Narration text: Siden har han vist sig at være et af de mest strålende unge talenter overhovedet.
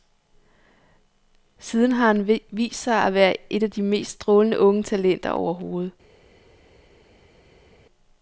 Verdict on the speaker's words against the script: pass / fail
pass